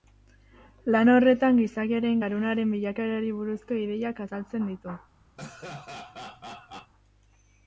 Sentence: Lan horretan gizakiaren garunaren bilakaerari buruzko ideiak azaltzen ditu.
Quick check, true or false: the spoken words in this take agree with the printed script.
true